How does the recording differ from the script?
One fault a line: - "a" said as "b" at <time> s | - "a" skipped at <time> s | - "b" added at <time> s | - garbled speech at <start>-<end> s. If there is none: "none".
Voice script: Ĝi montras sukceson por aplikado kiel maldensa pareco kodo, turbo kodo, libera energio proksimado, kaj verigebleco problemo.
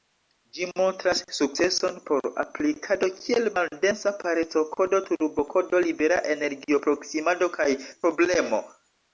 - "verigebleco" skipped at 7.7 s